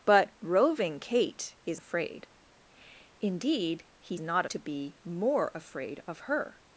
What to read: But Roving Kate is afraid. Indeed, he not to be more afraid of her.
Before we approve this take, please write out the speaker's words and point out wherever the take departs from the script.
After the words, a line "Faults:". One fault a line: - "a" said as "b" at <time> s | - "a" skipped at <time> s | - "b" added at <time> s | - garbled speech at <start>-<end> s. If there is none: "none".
But Roving Kate is afraid. Indeed, he not to be more afraid of her.
Faults:
none